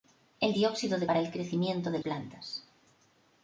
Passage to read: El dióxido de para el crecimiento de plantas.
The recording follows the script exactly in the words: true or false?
true